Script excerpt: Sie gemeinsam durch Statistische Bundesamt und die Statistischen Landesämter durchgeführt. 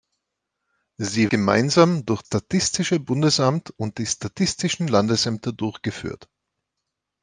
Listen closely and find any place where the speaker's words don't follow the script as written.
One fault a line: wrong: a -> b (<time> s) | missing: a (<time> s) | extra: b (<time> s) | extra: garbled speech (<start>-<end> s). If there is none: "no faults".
no faults